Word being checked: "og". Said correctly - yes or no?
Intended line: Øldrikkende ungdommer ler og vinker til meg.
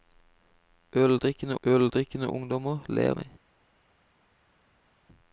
no